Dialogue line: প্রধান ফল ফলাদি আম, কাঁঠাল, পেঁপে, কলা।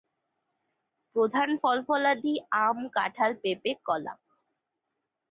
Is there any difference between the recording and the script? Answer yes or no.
no